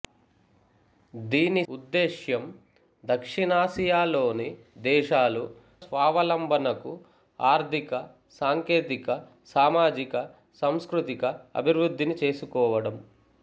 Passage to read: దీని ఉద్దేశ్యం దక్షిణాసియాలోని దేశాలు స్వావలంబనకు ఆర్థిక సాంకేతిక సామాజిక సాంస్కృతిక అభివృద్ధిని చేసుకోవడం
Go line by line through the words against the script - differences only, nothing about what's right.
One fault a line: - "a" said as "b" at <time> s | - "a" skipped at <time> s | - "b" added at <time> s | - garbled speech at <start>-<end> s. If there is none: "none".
none